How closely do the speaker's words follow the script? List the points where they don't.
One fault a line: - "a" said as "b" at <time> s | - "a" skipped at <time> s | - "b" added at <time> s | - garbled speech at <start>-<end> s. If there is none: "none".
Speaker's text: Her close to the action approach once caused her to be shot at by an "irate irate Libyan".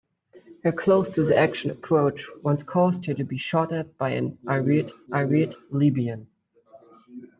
none